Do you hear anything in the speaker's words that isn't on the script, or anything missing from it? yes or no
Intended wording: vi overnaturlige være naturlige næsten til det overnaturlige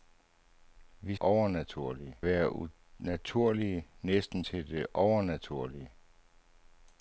no